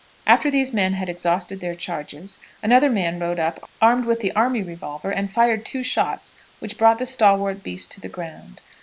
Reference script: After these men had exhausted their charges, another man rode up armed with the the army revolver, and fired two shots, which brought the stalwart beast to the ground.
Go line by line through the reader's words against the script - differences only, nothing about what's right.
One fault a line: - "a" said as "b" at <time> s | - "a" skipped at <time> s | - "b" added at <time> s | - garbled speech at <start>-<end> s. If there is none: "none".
- "the" skipped at 4.3 s